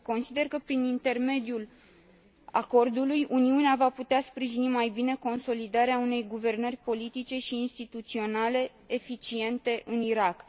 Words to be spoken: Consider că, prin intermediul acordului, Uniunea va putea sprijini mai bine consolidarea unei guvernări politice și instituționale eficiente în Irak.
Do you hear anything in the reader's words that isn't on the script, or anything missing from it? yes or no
no